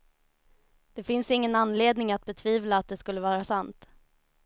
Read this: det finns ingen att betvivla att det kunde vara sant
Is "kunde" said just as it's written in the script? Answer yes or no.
no